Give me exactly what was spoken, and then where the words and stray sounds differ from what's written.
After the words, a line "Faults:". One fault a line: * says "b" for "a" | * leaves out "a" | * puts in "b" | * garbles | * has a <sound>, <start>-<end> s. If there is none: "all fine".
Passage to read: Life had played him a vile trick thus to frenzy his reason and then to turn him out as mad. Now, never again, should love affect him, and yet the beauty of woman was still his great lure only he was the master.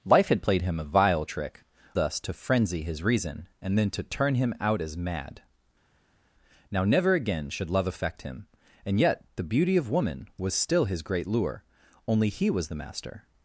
Life had played him a vile trick thus to frenzy his reason and then to turn him out as mad. Now, never again, should love affect him, and yet the beauty of woman was still his great lure only he was the master.
Faults:
all fine